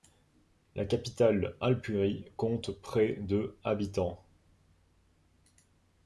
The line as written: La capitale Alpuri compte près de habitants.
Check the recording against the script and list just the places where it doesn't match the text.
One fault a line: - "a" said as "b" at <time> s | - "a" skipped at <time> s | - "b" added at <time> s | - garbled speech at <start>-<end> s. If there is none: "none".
none